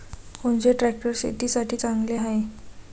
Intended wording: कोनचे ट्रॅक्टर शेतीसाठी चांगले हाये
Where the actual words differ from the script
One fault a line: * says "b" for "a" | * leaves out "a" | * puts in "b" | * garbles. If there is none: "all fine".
all fine